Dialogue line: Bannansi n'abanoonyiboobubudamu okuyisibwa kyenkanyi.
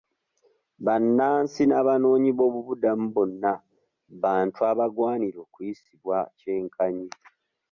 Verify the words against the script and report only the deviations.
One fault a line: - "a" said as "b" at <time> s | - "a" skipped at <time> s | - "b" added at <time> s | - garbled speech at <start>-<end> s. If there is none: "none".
- "bonna bantu abagwanira" added at 3.1 s